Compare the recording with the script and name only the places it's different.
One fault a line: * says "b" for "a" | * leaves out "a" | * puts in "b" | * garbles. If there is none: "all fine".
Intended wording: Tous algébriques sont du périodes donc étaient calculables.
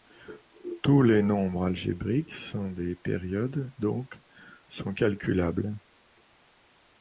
* puts in "les nombres"
* says "des" for "du"
* says "sont" for "étaient"